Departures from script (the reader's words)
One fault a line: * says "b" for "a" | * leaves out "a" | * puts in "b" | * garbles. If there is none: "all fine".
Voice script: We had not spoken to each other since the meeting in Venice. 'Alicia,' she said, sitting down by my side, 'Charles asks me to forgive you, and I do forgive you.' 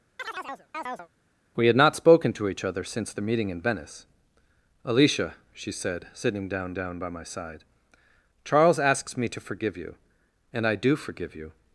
* puts in "down"